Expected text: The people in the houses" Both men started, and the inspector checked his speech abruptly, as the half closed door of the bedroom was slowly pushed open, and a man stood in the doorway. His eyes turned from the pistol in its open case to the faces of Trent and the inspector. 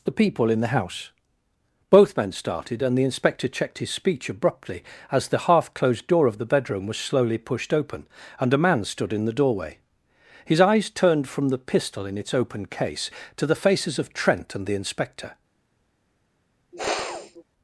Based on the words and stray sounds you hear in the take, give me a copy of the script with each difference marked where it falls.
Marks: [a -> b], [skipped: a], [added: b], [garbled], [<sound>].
The people in the [houses" -> house] Both men started, and the inspector checked his speech abruptly, as the half closed door of the bedroom was slowly pushed open, and a man stood in the doorway. His eyes turned from the pistol in its open case to the faces of Trent and the inspector. [sniff]